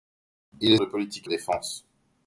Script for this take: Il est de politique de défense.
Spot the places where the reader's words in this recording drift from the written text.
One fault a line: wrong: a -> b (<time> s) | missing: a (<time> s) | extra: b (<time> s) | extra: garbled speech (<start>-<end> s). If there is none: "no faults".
no faults